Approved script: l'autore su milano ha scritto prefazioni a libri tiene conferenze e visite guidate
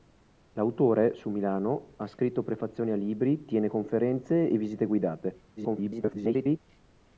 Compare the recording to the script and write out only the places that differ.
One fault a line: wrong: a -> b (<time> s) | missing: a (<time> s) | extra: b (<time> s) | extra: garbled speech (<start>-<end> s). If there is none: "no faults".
extra: garbled speech (5.6-6.6 s)